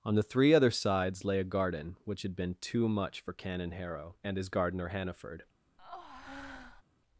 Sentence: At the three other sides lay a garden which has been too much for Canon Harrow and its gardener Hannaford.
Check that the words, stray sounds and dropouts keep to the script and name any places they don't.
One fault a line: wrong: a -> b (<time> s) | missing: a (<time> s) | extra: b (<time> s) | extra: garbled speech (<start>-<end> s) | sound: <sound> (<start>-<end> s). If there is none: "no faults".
wrong: At -> On (0.0 s)
wrong: has -> had (2.2 s)
wrong: its -> his (4.3 s)
sound: breath (5.8-6.8 s)